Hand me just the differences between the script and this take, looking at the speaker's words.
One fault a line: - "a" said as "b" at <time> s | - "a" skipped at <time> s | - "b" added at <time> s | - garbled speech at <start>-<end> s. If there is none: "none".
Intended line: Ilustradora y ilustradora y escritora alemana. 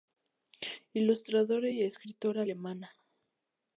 - "ilustradora y" skipped at 1.8 s